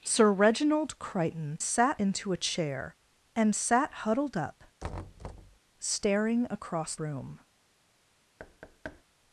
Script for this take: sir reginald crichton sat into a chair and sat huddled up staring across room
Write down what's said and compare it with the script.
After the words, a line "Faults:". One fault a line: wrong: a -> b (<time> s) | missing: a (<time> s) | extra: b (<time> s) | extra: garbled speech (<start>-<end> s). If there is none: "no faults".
sir reginald crichton sat into a chair and sat huddled up staring across room
Faults:
no faults